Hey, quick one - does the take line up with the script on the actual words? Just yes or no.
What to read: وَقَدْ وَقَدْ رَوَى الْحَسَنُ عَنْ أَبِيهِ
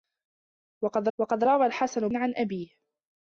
yes